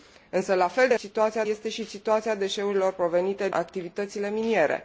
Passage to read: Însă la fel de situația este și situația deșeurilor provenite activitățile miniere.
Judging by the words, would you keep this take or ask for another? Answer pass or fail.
pass